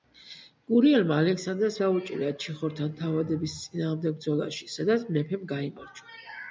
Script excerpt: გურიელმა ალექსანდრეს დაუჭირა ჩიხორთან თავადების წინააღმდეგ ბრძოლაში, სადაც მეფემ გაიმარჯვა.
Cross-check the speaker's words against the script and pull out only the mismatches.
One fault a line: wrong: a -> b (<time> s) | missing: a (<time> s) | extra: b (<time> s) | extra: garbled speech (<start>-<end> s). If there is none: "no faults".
no faults